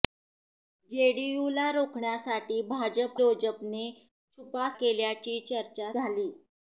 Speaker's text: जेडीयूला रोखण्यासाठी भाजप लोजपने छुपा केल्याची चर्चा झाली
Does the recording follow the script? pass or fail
pass